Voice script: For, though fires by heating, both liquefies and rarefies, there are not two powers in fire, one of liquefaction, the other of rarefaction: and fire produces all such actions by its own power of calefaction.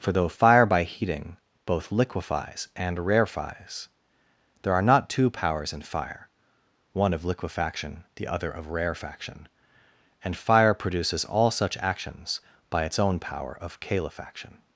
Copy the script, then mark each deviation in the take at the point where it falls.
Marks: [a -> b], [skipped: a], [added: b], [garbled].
For, though [fires -> fire] by heating, both liquefies and rarefies, there are not two powers in fire, one of liquefaction, the other of rarefaction: and fire produces all such actions by its own power of calefaction.